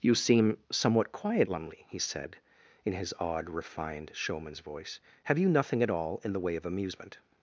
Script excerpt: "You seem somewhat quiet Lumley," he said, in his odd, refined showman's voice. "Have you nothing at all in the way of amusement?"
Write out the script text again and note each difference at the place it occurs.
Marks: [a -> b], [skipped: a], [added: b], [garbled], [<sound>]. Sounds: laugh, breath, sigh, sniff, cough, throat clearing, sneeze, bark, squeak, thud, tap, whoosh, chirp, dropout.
"You seem somewhat quiet Lumley," he said, in his odd, refined showman's voice. "Have you nothing at all in the way of amusement?"